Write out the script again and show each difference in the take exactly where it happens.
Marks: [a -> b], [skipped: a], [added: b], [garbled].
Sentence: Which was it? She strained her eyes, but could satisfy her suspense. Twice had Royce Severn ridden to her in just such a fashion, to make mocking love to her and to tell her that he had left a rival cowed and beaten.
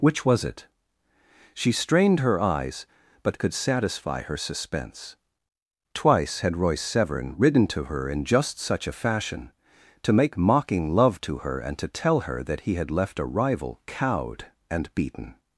Which was it? She strained her eyes, but could satisfy her suspense. Twice had Royce Severn ridden to her in just such a fashion, to make mocking love to her and to tell her that he had left a rival cowed and beaten.